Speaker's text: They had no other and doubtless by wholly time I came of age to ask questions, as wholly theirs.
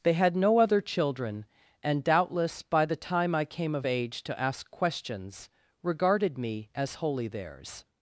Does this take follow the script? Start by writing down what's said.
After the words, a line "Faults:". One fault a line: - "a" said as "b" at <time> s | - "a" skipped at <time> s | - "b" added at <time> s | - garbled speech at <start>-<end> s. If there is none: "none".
They had no other children, and doubtless by the time I came of age to ask questions, regarded me as wholly theirs.
Faults:
- "children" added at 0.8 s
- "wholly" said as "the" at 2.9 s
- "regarded me" added at 5.8 s